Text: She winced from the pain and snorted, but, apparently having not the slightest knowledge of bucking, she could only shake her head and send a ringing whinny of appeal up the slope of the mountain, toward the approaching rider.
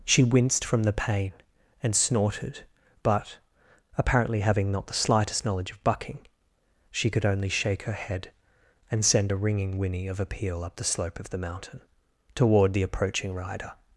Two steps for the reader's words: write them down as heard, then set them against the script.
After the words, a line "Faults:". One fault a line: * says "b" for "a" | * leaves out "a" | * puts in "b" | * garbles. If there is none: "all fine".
She winced from the pain and snorted, but, apparently having not the slightest knowledge of bucking, she could only shake her head and send a ringing whinny of appeal up the slope of the mountain, toward the approaching rider.
Faults:
all fine